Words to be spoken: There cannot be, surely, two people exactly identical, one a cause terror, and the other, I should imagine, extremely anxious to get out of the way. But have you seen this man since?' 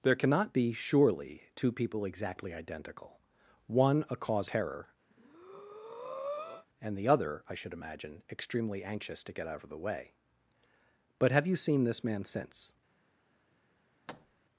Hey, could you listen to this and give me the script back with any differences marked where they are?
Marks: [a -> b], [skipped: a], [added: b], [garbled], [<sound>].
There cannot be, surely, two people exactly identical, one a cause terror, [breath] and the other, I should imagine, extremely anxious to get out of the way. But have you seen this man since?' [thud]